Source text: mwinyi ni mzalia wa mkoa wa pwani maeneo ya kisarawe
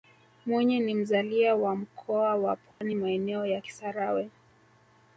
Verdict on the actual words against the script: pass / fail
pass